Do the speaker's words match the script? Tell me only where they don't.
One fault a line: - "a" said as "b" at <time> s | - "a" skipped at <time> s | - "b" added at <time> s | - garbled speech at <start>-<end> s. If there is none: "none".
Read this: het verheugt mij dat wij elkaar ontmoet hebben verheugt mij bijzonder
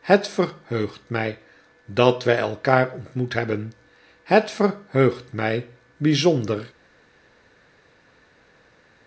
- "het" added at 4.2 s